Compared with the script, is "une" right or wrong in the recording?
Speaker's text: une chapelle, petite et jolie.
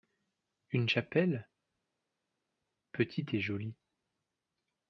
right